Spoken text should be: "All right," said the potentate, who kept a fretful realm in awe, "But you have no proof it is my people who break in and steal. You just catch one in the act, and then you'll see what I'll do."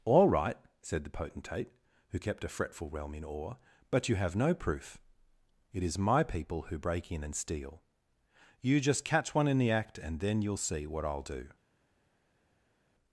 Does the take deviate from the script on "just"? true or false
false